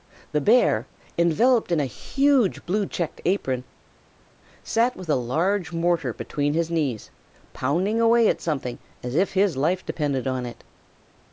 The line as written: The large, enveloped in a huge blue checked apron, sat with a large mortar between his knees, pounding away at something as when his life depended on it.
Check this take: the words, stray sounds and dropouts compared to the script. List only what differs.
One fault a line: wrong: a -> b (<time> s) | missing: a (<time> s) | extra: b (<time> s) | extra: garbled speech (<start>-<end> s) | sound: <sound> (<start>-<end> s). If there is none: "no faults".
wrong: large -> bear (0.4 s)
wrong: when -> if (9.1 s)